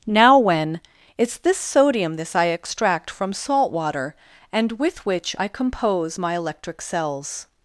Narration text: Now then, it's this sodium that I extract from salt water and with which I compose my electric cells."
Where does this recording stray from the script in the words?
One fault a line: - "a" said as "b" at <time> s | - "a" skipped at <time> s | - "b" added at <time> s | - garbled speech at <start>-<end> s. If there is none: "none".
- "then" said as "when" at 0.4 s
- "that" said as "this" at 2.1 s